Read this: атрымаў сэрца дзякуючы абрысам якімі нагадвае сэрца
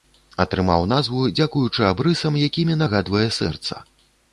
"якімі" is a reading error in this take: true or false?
false